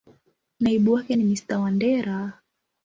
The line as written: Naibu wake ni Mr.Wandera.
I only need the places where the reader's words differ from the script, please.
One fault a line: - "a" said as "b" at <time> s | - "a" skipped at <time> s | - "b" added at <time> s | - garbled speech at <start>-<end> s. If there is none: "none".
none